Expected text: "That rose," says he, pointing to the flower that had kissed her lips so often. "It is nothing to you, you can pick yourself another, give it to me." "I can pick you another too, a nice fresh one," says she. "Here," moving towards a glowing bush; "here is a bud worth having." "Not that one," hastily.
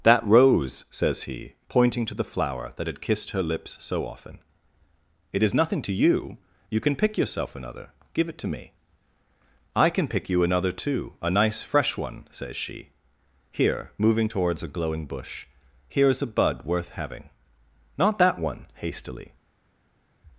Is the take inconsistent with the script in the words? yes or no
no